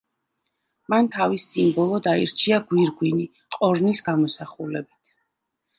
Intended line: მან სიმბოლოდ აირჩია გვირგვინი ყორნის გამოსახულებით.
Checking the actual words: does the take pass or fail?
fail